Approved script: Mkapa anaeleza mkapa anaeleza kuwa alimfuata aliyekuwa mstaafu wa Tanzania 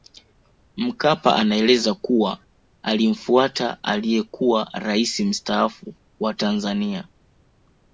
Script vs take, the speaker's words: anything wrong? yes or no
yes